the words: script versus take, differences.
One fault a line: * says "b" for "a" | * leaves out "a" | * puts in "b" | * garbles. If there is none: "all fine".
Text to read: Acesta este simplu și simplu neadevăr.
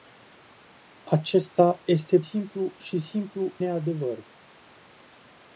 all fine